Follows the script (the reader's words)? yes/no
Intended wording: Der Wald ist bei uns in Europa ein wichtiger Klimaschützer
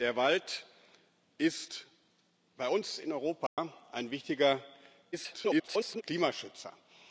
no